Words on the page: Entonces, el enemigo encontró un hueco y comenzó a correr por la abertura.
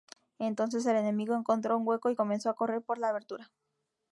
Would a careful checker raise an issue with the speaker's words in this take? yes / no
no